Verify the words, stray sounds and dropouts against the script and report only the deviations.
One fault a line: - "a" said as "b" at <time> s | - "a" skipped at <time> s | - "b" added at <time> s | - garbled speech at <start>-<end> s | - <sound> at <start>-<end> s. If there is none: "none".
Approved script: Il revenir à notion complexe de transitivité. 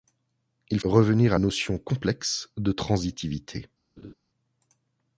- laugh at 4.0-4.1 s